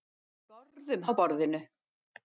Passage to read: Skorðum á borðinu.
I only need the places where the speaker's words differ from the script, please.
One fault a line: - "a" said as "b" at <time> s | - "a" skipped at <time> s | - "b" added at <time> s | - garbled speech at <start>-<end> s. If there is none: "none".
none